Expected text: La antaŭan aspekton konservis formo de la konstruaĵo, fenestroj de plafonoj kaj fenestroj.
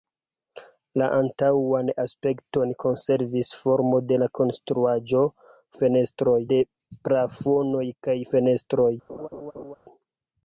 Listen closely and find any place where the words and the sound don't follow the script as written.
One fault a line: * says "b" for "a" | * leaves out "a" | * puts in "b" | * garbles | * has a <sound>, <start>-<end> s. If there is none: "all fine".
* has a laugh, 9.1-9.8 s